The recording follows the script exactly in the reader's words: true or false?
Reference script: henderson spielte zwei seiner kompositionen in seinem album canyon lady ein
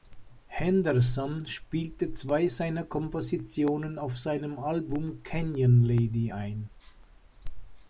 false